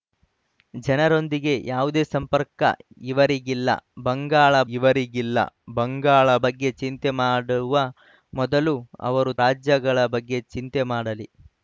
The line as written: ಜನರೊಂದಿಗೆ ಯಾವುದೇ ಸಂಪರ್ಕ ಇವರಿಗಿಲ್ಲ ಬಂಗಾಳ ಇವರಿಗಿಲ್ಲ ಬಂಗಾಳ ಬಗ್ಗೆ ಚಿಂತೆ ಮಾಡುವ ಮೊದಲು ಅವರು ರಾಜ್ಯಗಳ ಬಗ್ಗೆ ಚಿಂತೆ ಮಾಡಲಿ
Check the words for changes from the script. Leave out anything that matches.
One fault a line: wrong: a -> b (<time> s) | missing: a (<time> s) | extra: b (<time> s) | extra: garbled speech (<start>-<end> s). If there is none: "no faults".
no faults